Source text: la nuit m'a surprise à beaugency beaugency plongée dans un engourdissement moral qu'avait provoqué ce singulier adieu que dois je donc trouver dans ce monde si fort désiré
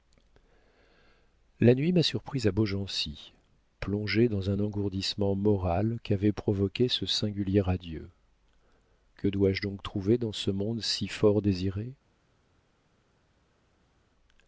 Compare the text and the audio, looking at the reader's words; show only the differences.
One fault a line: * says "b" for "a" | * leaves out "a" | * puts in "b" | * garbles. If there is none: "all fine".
* leaves out "beaugency"